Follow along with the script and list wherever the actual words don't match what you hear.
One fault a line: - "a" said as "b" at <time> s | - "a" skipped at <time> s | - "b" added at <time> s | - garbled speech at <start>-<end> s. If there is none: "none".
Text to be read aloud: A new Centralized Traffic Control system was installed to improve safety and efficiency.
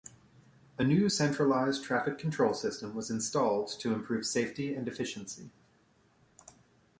none